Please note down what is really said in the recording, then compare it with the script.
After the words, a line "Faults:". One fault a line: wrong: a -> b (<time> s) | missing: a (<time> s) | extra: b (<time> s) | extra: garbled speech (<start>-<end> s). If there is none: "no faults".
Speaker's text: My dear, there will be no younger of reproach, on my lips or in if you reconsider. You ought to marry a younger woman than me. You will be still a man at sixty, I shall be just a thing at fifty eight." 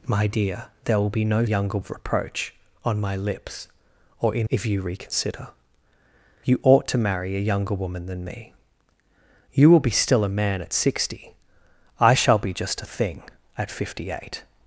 My dear, there will be no younger of reproach, on my lips or in if you reconsider. You ought to marry a younger woman than me. You will be still a man at sixty, I shall be just a thing at fifty eight."
Faults:
no faults